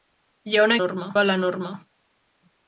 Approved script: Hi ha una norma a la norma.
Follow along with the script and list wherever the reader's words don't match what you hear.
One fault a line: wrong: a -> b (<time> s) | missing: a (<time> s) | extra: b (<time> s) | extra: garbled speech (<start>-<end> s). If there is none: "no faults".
no faults